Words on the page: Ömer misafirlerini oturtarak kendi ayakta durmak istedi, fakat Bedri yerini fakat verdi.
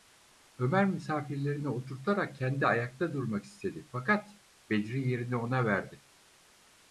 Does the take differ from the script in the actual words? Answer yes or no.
yes